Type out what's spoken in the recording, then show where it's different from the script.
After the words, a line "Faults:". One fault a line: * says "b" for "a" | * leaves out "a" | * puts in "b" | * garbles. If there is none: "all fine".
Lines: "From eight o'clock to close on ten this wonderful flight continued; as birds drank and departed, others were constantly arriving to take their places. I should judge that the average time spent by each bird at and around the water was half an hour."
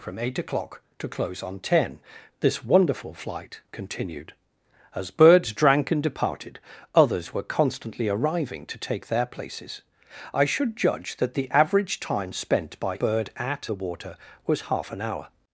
"From eight o'clock to close on ten this wonderful flight continued; as birds drank and departed, others were constantly arriving to take their places. I should judge that the average time spent by bird at the water was half an hour."
Faults:
* leaves out "each"
* leaves out "and around"